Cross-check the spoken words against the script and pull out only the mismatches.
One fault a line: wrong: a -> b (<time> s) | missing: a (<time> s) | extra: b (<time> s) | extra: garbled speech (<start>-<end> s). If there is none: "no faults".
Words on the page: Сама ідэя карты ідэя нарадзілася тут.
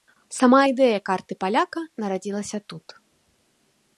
wrong: ідэя -> паляка (1.4 s)